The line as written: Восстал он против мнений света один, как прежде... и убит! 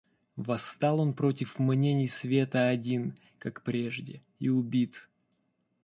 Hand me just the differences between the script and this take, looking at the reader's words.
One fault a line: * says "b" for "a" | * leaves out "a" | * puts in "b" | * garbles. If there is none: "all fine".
all fine